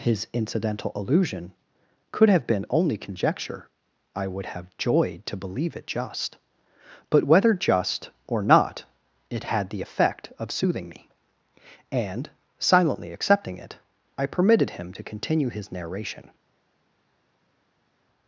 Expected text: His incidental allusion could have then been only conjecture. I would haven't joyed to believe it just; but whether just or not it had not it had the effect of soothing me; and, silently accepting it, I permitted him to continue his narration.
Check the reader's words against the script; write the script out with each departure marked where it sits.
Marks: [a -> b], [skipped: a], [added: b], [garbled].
His incidental allusion could have [skipped: then] been only conjecture. I would [haven't -> have] joyed to believe it just; but whether just or not it had [skipped: not it had] the effect of soothing me; and, silently accepting it, I permitted him to continue his narration.